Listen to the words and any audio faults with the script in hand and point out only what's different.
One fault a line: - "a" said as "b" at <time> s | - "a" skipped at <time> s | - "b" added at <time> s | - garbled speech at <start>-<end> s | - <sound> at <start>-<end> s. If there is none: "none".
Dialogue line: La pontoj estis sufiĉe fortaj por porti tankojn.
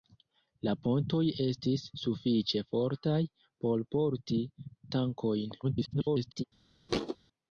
- garbled speech at 5.6-6.4 s
- thud at 6.9-7.2 s